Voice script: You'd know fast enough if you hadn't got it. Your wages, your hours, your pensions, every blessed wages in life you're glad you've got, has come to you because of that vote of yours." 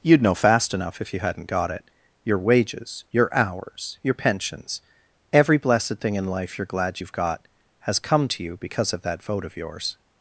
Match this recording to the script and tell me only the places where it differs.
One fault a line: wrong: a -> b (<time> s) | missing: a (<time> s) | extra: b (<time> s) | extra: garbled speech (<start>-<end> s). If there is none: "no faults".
wrong: wages -> thing (6.0 s)